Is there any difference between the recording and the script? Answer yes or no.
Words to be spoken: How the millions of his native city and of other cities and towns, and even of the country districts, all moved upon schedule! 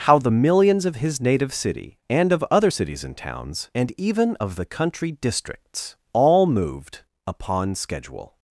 no